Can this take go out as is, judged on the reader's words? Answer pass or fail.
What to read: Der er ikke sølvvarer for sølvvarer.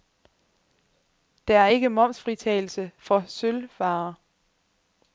fail